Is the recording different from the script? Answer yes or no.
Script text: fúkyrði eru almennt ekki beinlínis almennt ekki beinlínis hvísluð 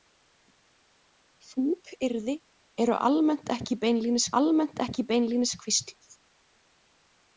no